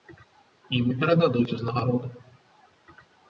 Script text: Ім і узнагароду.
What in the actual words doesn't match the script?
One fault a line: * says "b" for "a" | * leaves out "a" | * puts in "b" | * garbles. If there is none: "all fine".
* puts in "перададуць"